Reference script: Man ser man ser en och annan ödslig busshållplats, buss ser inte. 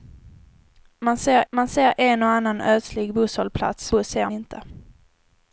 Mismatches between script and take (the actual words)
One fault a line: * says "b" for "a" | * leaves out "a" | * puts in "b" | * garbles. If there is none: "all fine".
all fine